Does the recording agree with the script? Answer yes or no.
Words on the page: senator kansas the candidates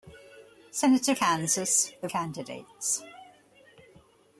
yes